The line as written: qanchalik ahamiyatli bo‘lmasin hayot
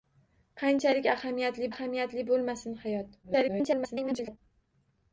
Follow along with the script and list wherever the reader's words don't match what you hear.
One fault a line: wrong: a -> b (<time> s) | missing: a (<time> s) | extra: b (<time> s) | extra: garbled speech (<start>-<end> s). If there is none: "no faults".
extra: ahamiyatli (1.7 s)
extra: garbled speech (3.2-4.4 s)